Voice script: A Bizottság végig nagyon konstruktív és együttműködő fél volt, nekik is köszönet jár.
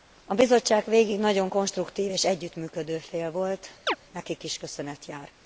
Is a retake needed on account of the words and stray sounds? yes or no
yes